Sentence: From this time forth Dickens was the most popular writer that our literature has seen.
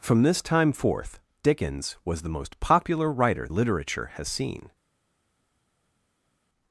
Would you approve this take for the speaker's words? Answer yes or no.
no